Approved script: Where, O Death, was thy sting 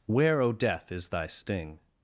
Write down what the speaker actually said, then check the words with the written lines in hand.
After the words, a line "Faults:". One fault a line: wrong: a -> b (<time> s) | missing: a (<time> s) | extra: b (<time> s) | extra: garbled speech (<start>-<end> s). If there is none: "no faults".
Where, O Death, is thy sting
Faults:
wrong: was -> is (0.9 s)